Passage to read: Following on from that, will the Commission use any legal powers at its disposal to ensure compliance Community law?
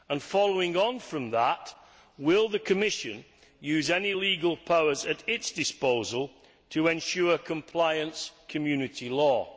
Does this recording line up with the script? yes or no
yes